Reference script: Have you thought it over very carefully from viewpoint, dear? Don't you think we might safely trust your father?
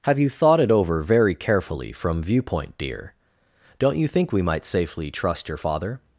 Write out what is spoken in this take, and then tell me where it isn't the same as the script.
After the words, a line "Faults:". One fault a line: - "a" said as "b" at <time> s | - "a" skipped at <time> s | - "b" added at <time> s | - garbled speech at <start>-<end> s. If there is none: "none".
Have you thought it over very carefully from viewpoint, dear? Don't you think we might safely trust your father?
Faults:
none